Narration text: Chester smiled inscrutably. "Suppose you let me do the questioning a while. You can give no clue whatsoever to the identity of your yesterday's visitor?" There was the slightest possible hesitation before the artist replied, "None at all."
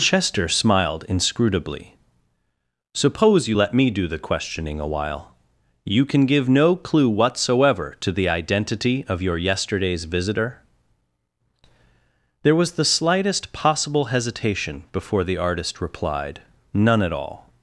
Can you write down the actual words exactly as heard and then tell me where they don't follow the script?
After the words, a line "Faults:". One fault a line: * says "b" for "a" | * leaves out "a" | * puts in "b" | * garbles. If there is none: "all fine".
Chester smiled inscrutably. "Suppose you let me do the questioning a while. You can give no clue whatsoever to the identity of your yesterday's visitor?" There was the slightest possible hesitation before the artist replied, "None at all."
Faults:
all fine